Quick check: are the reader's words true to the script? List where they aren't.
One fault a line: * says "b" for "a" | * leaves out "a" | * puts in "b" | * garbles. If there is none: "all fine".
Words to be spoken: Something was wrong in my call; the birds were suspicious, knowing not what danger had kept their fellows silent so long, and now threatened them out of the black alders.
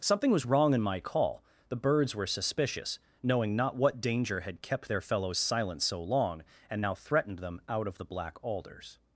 all fine